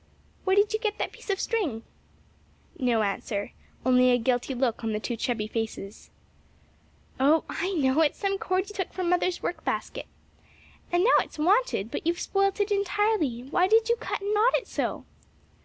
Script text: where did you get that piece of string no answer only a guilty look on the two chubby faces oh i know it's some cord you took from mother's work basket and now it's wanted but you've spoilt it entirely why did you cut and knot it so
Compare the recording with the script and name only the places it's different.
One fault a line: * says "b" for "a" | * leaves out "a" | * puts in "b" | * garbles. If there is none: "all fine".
all fine